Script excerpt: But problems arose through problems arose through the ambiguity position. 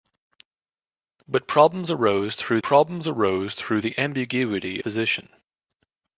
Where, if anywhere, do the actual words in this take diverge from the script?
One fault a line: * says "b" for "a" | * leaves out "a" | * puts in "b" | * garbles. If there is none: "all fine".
all fine